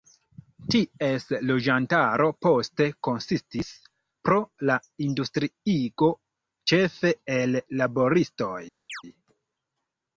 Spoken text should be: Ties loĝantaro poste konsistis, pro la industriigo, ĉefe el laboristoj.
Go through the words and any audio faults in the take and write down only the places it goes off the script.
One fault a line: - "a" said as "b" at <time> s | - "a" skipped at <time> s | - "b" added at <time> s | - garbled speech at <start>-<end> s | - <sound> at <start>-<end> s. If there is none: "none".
- chirp at 8.9-9.0 s